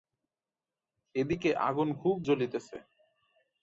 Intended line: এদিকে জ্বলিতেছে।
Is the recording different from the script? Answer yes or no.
yes